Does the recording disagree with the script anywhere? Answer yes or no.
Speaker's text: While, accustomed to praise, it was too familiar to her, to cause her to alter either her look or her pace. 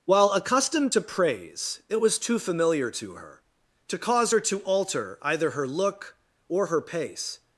no